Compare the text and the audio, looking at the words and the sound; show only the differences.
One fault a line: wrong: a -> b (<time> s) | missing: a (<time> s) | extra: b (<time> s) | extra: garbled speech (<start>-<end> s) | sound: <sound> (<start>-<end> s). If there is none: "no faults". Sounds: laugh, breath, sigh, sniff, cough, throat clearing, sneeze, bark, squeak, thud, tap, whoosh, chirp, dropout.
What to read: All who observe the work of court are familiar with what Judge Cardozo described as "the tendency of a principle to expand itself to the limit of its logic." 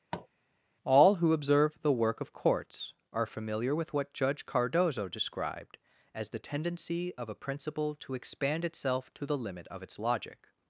sound: tap (0.1-0.3 s)
wrong: court -> courts (2.3 s)